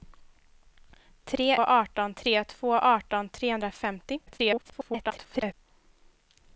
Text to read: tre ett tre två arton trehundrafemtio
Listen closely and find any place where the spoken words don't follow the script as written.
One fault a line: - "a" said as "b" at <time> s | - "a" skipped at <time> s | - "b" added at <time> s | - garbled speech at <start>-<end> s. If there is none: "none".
- "ett" said as "arton" at 1.6 s
- garbled speech at 4.3-5.5 s